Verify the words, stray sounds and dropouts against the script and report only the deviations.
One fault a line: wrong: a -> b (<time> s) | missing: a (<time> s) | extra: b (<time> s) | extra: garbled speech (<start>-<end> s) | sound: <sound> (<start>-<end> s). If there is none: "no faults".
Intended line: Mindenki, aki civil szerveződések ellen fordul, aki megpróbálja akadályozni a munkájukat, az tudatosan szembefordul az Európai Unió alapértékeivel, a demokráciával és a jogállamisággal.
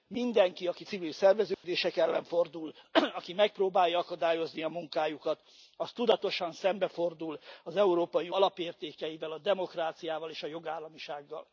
sound: dropout (1.5-1.6 s)
missing: Unió (8.3 s)